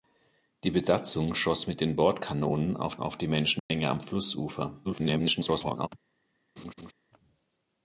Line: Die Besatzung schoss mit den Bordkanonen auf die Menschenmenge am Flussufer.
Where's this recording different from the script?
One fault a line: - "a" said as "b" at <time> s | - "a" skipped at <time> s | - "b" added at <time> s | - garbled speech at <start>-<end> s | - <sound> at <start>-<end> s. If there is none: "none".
- "auf" added at 3.0 s
- dropout at 3.6-3.7 s
- garbled speech at 4.8-5.9 s
- laugh at 6.6-6.9 s